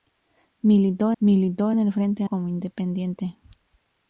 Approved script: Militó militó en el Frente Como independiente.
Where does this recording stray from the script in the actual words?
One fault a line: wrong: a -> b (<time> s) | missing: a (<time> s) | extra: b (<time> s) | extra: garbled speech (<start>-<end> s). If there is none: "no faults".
no faults